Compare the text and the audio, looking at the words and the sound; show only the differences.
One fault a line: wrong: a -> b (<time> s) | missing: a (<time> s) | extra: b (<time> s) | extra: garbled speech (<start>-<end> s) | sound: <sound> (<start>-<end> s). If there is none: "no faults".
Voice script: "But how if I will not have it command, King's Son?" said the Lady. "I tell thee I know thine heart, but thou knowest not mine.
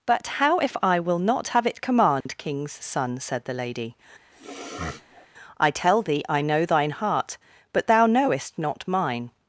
sound: dropout (2.2-2.3 s)
sound: sniff (4.3-5.3 s)